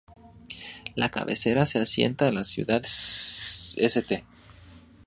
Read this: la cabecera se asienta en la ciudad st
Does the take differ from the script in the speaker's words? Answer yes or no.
no